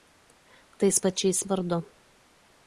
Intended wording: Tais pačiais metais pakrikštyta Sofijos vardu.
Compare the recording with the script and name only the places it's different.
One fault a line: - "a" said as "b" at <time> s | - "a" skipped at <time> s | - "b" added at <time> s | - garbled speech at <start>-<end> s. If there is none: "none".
- "metais pakrikštyta Sofijos" skipped at 1.4 s